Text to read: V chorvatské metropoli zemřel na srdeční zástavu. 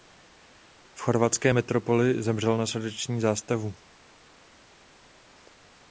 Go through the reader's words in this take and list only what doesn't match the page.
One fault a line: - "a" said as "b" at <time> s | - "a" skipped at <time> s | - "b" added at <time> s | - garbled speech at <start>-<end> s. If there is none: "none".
none